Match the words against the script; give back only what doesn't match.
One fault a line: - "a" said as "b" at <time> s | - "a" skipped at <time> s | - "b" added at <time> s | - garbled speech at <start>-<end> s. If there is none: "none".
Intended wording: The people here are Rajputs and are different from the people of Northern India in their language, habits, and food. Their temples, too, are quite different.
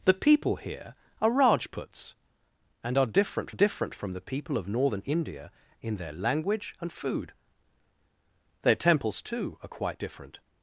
- "different" added at 3.5 s
- "habits" skipped at 6.8 s